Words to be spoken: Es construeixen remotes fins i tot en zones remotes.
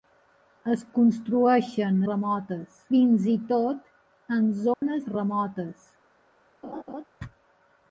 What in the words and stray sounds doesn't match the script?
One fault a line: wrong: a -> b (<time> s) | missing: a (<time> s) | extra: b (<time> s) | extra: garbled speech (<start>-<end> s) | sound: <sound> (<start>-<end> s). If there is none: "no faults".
sound: dropout (4.7-4.8 s)
sound: laugh (6.6-7.0 s)